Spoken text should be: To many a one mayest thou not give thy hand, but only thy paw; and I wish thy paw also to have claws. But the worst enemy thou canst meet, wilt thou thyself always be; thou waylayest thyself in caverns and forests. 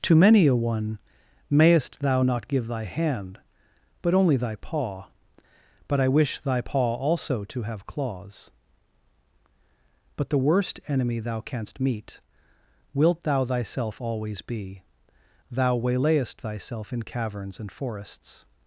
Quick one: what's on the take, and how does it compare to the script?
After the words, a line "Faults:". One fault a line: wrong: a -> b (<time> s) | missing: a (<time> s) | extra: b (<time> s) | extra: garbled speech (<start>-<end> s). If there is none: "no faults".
To many a one mayest thou not give thy hand, but only thy paw; but I wish thy paw also to have claws. But the worst enemy thou canst meet, wilt thou thyself always be; thou waylayest thyself in caverns and forests.
Faults:
wrong: and -> but (5.9 s)